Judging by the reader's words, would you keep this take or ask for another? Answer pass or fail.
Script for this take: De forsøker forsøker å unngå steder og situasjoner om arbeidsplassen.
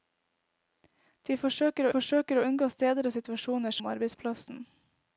pass